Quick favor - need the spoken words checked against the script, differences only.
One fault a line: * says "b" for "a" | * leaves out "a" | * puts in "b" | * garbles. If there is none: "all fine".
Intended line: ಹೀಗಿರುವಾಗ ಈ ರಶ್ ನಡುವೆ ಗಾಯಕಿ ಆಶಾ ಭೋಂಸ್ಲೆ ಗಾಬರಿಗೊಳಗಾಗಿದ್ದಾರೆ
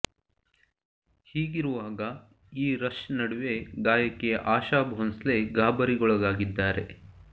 all fine